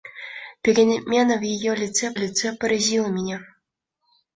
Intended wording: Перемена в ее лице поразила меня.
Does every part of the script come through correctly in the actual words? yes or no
no